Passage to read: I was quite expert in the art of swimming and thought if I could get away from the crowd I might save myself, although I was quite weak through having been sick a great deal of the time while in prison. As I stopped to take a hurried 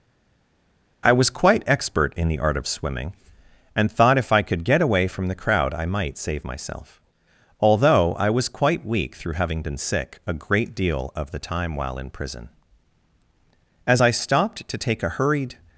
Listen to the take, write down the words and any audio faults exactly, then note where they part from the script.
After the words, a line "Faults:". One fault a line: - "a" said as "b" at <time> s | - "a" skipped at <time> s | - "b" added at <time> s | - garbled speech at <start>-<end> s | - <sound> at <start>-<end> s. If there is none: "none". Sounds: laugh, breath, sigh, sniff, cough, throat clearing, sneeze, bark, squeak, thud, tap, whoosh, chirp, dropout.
I was quite expert in the art of swimming and thought if I could get away from the crowd I might save myself, although I was quite weak through having been sick a great deal of the time while in prison. As I stopped to take a hurried
Faults:
none